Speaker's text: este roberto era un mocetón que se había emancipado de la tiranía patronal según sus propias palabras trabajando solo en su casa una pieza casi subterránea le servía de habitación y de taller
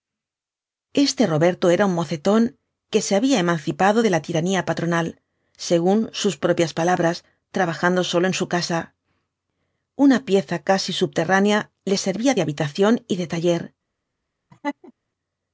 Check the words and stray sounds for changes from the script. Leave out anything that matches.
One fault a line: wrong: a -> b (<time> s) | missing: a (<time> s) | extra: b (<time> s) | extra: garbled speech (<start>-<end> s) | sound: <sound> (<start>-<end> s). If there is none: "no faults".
sound: laugh (14.5-14.9 s)